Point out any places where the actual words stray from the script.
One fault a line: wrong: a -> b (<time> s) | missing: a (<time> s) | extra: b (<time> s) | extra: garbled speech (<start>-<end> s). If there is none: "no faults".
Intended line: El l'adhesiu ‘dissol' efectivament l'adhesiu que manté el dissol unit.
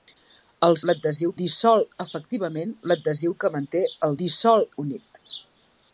no faults